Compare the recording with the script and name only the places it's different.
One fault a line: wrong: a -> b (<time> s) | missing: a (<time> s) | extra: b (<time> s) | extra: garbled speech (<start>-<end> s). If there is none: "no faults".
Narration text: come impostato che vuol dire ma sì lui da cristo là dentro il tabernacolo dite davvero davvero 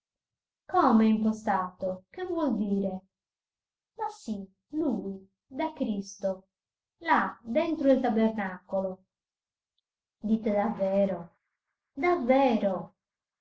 no faults